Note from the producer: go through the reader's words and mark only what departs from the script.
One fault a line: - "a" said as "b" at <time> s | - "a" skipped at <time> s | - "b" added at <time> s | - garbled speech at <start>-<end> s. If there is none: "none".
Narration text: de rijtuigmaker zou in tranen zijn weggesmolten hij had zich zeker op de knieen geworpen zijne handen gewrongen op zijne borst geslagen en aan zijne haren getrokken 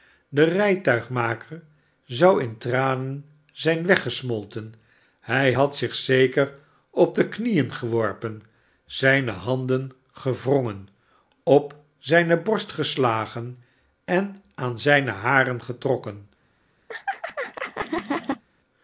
none